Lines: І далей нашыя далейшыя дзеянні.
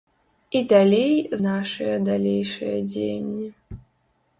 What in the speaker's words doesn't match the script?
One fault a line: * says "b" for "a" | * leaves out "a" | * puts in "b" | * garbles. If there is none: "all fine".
all fine